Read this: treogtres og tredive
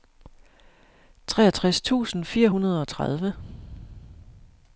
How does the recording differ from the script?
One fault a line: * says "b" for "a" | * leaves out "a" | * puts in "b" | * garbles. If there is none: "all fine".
* puts in "tusind fire hundrede"